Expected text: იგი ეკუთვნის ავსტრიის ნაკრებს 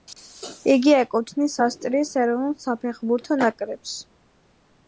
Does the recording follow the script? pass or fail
fail